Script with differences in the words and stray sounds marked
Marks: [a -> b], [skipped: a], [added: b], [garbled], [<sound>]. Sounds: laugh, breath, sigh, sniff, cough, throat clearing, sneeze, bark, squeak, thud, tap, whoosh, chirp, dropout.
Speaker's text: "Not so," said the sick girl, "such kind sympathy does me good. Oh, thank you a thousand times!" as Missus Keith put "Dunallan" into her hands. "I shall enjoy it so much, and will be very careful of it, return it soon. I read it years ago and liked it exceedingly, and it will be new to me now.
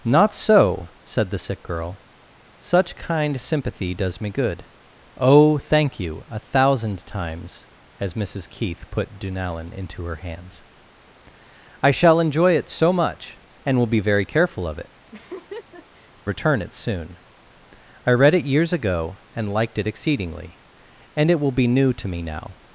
"Not so," said the sick girl, "such kind sympathy does me good. Oh, thank you a thousand times!" as Missus Keith put "Dunallan" into her hands. "I shall enjoy it so much, and will be very careful of it, [laugh] return it soon. I read it years ago and liked it exceedingly, and it will be new to me now.